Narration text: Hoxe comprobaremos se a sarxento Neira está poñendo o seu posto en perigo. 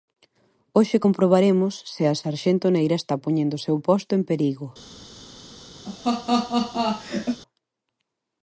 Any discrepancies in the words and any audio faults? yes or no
yes